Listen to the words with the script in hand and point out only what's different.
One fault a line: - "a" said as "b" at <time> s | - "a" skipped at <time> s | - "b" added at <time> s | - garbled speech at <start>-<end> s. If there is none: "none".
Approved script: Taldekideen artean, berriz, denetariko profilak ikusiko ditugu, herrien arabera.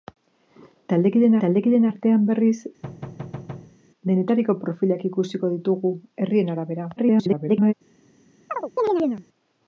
- "taldekideen" added at 1.4 s
- garbled speech at 7.0-7.7 s